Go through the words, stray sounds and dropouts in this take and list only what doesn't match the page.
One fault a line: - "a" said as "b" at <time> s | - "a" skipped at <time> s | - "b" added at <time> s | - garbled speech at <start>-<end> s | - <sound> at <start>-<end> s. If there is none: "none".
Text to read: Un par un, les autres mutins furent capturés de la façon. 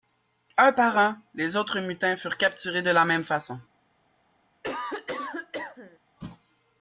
- "même" added at 3.0 s
- cough at 4.6-6.0 s